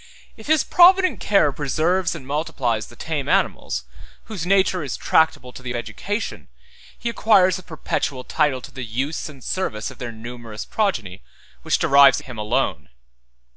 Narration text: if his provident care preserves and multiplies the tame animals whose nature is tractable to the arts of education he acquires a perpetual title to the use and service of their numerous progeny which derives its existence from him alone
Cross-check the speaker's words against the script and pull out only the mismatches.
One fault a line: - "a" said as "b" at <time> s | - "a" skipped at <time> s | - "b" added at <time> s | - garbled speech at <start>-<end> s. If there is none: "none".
- "arts of" skipped at 5.8 s
- "its existence from" skipped at 12.2 s